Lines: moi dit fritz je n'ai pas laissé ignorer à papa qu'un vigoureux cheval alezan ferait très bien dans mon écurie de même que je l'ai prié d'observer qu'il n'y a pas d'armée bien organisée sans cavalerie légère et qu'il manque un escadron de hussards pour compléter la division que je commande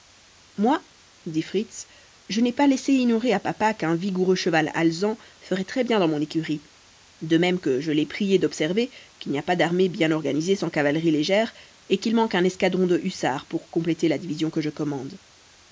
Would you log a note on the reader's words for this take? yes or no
no